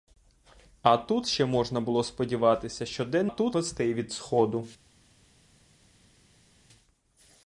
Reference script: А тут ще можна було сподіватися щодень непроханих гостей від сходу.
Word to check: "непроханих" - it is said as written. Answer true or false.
false